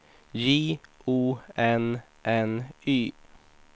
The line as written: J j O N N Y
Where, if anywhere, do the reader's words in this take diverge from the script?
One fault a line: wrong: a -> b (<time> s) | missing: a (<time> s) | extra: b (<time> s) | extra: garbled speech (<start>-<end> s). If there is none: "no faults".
missing: j (0.8 s)